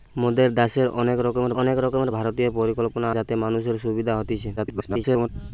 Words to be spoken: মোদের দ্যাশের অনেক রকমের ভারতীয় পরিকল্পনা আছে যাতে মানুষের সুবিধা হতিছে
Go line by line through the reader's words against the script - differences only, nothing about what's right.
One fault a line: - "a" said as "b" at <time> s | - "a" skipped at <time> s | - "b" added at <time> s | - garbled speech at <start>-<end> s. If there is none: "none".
- "অনেক রকমের" added at 1.6 s
- "আছে" skipped at 3.1 s
- garbled speech at 4.6-5.3 s